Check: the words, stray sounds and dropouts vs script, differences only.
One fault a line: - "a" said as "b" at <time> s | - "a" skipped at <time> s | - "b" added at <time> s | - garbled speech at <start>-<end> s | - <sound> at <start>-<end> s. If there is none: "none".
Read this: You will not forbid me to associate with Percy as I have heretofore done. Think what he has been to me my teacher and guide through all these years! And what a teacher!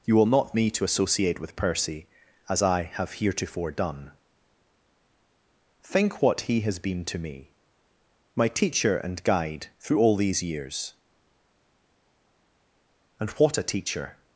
- "forbid" skipped at 0.6 s